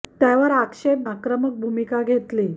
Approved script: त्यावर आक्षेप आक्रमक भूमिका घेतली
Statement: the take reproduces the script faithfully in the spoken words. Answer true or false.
true